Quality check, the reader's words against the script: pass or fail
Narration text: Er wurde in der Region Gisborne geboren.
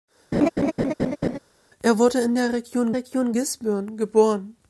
fail